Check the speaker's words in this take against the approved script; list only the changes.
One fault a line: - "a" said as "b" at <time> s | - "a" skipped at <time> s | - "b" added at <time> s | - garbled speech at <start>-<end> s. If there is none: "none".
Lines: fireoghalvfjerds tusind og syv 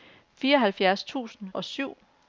none